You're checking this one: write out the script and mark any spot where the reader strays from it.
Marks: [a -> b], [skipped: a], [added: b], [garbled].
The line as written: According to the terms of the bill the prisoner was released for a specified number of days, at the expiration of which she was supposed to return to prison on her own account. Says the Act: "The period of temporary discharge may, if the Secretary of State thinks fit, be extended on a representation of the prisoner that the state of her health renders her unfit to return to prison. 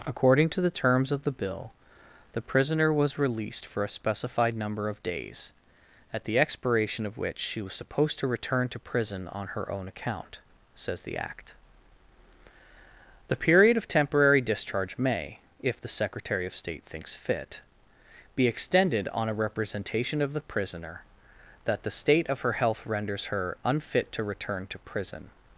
According to the terms of the bill the prisoner was released for a specified number of days, at the expiration of which she was supposed to return to prison on her own account. Says the Act: "The period of temporary discharge may, if the Secretary of State thinks fit, be extended on a representation of the prisoner that the state of her health renders her unfit to return to prison.